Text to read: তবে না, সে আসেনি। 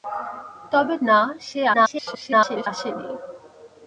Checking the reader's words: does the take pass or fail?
fail